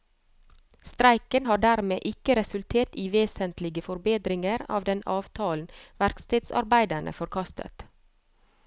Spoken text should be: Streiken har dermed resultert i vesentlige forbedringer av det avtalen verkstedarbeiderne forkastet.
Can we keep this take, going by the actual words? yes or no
no